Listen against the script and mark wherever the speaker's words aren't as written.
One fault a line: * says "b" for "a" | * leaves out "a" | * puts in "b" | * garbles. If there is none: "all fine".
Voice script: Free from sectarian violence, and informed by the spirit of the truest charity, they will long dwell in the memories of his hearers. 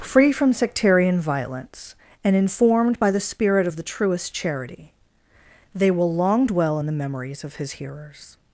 all fine